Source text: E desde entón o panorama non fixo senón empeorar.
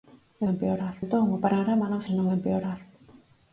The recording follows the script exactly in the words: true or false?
false